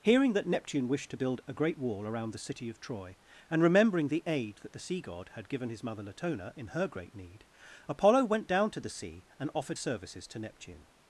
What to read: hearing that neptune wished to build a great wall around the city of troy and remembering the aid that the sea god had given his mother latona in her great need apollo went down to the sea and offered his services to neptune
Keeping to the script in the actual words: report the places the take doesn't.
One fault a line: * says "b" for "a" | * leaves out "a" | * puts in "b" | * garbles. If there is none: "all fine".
* leaves out "his"